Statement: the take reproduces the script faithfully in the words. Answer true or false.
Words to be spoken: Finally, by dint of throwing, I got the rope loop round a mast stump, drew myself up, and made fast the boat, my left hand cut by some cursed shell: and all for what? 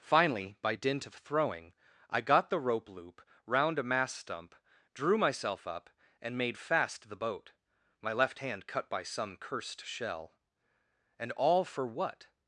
true